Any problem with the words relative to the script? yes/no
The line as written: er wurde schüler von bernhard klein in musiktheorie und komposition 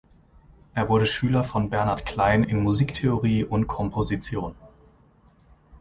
no